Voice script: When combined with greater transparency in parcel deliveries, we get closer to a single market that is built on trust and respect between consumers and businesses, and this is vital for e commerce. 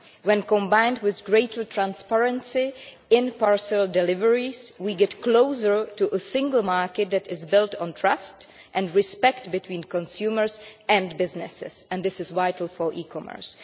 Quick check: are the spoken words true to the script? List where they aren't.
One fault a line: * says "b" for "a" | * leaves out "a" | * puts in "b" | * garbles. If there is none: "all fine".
all fine